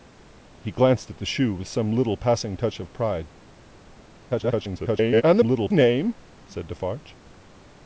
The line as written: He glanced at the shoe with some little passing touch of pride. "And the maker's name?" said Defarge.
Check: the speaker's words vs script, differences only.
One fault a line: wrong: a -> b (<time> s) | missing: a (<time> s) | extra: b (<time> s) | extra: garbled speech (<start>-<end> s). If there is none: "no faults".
extra: garbled speech (4.3-5.2 s)
wrong: maker's -> little (5.4 s)